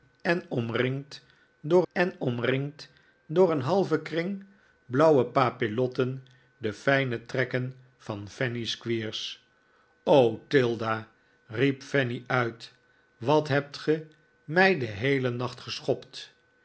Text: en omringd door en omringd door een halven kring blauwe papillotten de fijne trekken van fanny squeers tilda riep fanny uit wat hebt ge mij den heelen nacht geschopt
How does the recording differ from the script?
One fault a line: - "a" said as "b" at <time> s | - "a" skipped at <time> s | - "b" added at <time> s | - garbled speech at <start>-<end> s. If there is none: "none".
none